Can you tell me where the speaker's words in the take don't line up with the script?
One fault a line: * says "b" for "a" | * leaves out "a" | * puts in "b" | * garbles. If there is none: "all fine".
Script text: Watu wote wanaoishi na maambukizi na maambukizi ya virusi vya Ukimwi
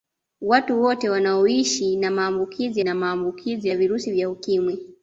all fine